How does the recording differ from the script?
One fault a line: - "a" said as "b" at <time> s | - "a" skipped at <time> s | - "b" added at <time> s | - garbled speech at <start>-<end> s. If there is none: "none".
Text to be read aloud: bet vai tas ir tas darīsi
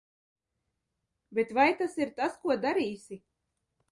- "ko" added at 2.5 s